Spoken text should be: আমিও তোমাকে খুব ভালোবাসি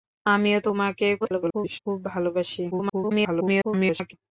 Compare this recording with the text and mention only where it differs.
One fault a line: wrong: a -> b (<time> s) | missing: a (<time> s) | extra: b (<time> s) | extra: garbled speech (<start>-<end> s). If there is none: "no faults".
extra: garbled speech (1.2-1.8 s)
extra: garbled speech (2.7-4.1 s)